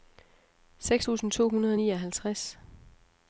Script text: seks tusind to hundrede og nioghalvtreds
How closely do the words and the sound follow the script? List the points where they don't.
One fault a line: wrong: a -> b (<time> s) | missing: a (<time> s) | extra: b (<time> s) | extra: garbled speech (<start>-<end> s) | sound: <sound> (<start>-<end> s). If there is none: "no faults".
no faults